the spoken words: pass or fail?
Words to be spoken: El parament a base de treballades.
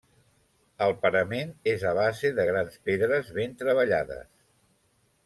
fail